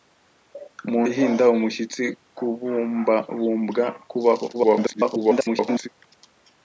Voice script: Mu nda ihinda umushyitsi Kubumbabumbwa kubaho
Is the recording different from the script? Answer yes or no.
yes